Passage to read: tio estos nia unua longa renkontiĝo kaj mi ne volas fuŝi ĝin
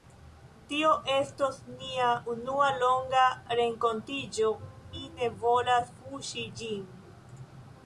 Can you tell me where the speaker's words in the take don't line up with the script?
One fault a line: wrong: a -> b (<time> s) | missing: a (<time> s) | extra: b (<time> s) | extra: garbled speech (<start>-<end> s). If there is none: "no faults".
missing: kaj (4.5 s)